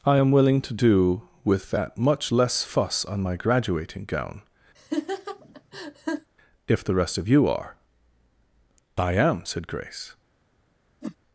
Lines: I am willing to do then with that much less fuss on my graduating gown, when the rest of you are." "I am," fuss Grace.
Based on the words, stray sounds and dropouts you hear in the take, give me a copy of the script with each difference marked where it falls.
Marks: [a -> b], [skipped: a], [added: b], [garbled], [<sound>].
I am willing to do [skipped: then] with that much less fuss on my graduating gown, [laugh] [when -> if] the rest of you are." "I am," [fuss -> said] Grace. [whoosh]